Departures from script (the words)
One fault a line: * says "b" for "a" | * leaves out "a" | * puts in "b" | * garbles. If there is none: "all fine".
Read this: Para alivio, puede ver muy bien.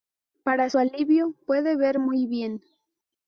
all fine